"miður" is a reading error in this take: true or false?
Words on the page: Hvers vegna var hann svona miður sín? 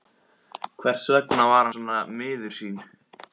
false